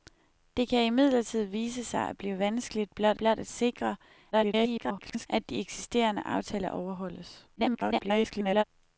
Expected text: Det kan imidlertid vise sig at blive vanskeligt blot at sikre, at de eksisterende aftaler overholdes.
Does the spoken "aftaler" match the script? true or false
true